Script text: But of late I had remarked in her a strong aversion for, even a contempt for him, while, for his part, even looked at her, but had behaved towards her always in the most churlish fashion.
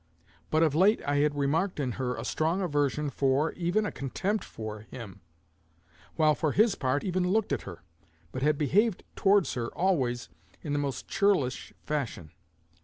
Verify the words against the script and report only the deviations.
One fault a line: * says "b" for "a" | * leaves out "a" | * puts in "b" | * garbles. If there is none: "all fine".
all fine